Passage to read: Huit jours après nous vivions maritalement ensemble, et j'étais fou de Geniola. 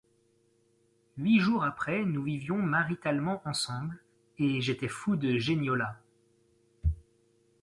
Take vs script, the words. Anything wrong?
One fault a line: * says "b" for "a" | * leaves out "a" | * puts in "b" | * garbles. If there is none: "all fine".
all fine